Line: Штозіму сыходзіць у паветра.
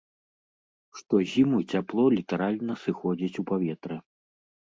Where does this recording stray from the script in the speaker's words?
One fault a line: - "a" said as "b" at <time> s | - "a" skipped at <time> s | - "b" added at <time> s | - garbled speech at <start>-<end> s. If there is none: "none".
- "цяпло літаральна" added at 1.7 s